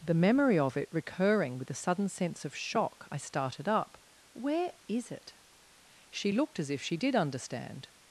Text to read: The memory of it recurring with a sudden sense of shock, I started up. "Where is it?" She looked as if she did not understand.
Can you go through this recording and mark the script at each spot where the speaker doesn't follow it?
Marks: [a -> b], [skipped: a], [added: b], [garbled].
The memory of it recurring with a sudden sense of shock, I started up. "Where is it?" She looked as if she did [skipped: not] understand.